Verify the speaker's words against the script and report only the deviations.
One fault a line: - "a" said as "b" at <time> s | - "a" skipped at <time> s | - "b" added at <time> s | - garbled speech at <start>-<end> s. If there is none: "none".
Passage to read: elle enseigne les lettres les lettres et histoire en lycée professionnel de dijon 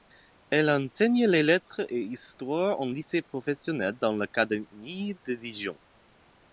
- "les lettres" skipped at 1.8 s
- "dans l'académie" added at 4.0 s